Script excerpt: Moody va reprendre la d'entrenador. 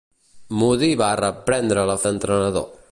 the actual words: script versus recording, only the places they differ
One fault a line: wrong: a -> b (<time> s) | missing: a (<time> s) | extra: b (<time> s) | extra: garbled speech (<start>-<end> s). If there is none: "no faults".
no faults